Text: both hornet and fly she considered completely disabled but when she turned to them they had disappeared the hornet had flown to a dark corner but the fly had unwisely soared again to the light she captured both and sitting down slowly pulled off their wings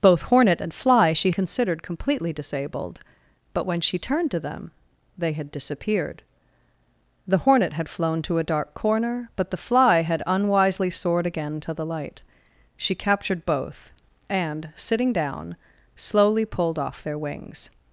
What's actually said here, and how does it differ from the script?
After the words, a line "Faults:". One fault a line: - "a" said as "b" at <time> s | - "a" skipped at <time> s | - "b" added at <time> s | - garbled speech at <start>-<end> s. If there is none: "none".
both hornet and fly she considered completely disabled but when she turned to them they had disappeared the hornet had flown to a dark corner but the fly had unwisely soared again to the light she captured both and sitting down slowly pulled off their wings
Faults:
none